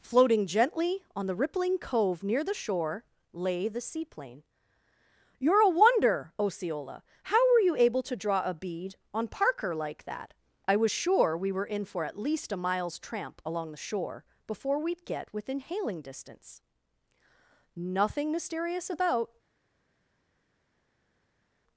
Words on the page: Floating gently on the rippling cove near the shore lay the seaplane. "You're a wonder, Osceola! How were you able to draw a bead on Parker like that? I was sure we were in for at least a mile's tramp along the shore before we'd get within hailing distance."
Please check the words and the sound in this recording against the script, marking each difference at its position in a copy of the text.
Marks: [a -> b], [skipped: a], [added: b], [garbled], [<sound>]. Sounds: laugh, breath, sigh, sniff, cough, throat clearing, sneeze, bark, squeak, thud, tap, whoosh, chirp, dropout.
Floating gently on the rippling cove near the shore lay the seaplane. "You're a wonder, Osceola! How were you able to draw a bead on Parker like that? I was sure we were in for at least a mile's tramp along the shore before we'd get within hailing distance." [added: Nothing mysterious about]